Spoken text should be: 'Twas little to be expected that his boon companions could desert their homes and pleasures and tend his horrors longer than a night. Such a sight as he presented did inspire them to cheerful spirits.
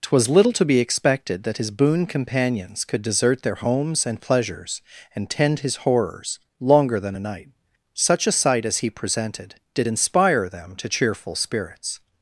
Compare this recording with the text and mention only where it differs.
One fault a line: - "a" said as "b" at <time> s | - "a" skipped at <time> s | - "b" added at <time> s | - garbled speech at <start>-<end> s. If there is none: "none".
none